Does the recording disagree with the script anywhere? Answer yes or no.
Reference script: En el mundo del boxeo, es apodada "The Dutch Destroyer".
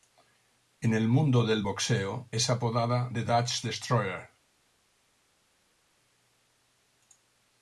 no